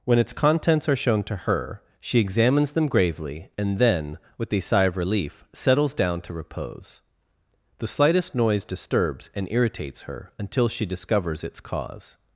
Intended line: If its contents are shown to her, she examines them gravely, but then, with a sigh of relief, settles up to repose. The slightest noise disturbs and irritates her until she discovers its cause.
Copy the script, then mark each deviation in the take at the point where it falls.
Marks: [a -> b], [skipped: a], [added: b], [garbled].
[If -> When] its contents are shown to her, she examines them gravely, [but -> and] then, with a sigh of relief, settles [up -> down] to repose. The slightest noise disturbs and irritates her until she discovers its cause.